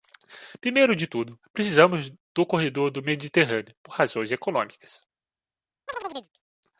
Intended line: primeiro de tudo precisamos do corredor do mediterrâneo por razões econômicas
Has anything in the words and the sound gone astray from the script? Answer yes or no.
yes